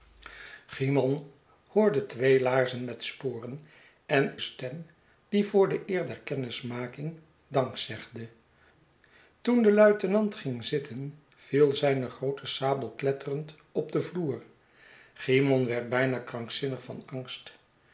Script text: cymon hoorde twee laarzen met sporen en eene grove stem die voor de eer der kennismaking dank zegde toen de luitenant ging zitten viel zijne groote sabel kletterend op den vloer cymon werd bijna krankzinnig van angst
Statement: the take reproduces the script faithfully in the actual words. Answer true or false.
false